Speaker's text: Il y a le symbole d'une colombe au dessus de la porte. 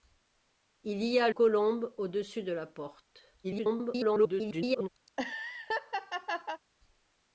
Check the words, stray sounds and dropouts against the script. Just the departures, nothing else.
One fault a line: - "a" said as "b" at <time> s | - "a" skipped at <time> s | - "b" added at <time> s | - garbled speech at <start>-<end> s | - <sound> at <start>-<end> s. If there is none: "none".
- "le symbole d'une" skipped at 1.3 s
- garbled speech at 3.4-4.9 s
- laugh at 5.1-6.6 s